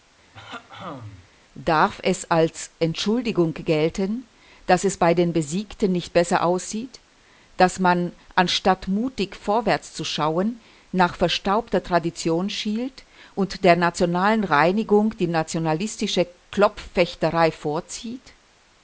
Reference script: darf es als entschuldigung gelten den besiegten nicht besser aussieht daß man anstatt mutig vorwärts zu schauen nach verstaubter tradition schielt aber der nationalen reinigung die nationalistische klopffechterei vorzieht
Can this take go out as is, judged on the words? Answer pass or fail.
fail